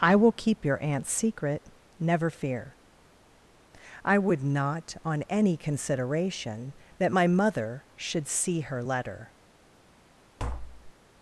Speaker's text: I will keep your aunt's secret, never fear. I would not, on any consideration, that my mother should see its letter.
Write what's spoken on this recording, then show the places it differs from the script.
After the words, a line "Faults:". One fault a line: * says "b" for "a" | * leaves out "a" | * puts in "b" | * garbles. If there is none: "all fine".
I will keep your aunt's secret, never fear. I would not, on any consideration, that my mother should see her letter.
Faults:
* says "her" for "its"